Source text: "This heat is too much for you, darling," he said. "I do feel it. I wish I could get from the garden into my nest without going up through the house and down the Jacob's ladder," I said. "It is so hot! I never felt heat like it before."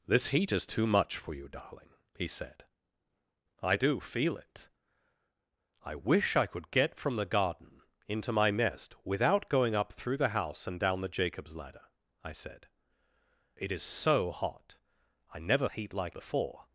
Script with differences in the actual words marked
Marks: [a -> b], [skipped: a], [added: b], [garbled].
"This heat is too much for you, darling," he said. "I do feel it. I wish I could get from the garden into my nest without going up through the house and down the Jacob's ladder," I said. "It is so hot! I never [skipped: felt] heat like [skipped: it] before."